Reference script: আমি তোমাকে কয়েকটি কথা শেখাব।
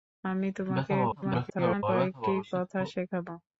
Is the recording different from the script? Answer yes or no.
yes